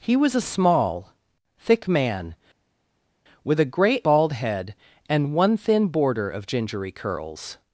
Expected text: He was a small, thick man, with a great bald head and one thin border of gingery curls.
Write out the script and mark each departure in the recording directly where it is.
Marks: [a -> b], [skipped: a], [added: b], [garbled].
He was a small, thick man, with a great bald head and one thin border of gingery curls.